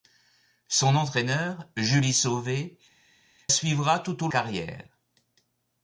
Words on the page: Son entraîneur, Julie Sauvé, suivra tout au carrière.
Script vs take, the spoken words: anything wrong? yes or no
no